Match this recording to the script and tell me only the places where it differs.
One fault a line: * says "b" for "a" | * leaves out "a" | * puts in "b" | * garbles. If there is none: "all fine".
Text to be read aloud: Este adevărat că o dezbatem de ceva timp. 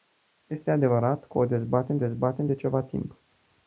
* puts in "dezbatem"